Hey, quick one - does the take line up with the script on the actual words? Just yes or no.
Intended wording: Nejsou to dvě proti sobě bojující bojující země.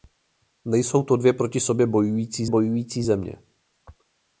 yes